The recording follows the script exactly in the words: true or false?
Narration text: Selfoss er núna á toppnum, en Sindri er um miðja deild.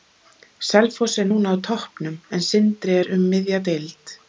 true